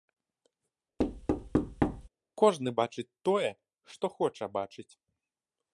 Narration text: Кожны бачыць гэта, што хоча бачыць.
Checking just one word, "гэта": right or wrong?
wrong